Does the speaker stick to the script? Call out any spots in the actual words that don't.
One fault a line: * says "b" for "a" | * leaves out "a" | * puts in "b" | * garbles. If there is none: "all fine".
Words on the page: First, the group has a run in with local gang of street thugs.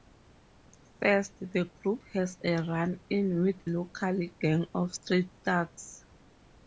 all fine